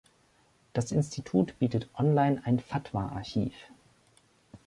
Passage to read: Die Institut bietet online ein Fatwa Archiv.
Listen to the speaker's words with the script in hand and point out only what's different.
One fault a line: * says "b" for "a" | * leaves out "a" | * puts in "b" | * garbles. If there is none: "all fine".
* says "Das" for "Die"